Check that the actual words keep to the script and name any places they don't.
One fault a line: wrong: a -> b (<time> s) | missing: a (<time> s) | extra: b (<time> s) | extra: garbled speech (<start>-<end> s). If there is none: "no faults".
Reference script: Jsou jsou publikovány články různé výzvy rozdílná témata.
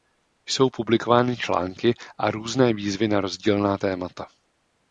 missing: jsou (0.7 s)
extra: a (2.2 s)
extra: na (3.1 s)